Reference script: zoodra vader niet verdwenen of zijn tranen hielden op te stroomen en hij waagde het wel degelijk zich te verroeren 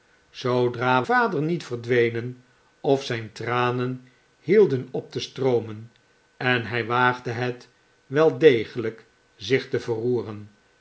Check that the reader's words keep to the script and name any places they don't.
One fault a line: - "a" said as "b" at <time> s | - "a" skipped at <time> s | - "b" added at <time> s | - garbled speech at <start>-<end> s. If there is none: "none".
none